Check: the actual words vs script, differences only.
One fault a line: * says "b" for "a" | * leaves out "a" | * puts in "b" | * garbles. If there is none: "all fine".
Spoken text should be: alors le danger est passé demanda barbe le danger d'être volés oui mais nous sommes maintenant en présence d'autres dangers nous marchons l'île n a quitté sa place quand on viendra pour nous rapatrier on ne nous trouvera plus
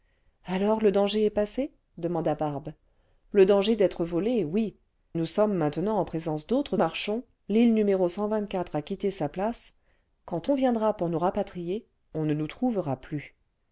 * leaves out "mais"
* leaves out "dangers nous"